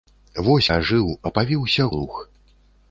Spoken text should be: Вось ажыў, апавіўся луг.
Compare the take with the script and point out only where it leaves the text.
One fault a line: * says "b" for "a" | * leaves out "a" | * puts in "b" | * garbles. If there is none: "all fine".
all fine